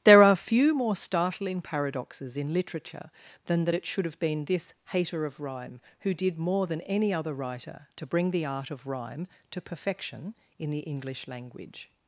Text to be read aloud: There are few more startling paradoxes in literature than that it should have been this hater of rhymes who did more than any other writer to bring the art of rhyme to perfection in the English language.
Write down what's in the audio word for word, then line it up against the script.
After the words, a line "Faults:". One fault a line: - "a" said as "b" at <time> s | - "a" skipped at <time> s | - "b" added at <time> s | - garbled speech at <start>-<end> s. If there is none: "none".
There are few more startling paradoxes in literature than that it should have been this hater of rhyme who did more than any other writer to bring the art of rhyme to perfection in the English language.
Faults:
- "rhymes" said as "rhyme" at 5.4 s